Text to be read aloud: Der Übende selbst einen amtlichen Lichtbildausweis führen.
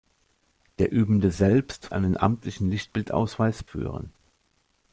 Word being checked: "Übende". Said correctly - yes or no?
yes